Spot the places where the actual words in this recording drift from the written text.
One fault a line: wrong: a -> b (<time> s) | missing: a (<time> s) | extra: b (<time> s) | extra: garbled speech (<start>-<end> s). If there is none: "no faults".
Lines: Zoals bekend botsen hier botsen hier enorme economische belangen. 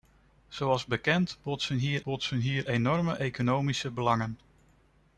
no faults